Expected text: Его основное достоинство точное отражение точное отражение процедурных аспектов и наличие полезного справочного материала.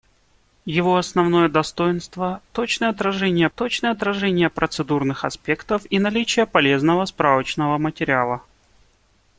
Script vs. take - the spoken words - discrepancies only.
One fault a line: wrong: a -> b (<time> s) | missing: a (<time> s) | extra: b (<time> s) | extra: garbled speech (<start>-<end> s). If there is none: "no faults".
no faults